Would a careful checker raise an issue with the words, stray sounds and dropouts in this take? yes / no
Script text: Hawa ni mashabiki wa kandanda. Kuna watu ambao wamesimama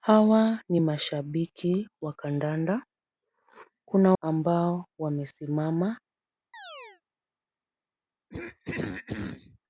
yes